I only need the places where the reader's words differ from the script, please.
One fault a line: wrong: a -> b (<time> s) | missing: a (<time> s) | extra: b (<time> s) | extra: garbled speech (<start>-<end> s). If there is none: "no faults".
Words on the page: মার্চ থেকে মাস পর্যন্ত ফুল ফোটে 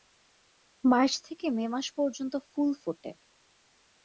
extra: মে (1.5 s)